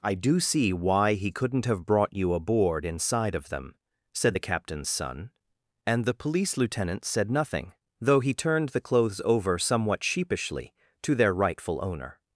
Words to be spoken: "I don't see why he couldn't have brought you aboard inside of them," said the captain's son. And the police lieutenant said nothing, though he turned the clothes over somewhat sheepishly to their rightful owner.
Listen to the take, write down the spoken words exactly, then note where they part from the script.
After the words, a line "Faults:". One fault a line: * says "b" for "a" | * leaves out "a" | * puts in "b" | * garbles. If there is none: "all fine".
"I do see why he couldn't have brought you aboard inside of them," said the captain's son. And the police lieutenant said nothing, though he turned the clothes over somewhat sheepishly to their rightful owner.
Faults:
* says "do" for "don't"